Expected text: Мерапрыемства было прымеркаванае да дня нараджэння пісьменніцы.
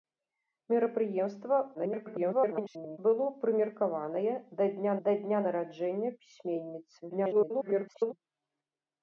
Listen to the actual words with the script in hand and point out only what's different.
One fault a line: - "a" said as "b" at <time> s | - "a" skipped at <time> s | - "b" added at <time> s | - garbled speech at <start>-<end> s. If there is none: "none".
- garbled speech at 1.7-3.0 s
- "да дня" added at 5.1 s
- garbled speech at 7.1-8.1 s